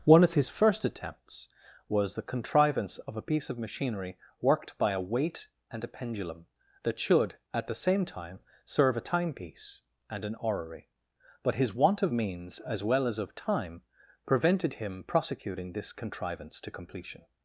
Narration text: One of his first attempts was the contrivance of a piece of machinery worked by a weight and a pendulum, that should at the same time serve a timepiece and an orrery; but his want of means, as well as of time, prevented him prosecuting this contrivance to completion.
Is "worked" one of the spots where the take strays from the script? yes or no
no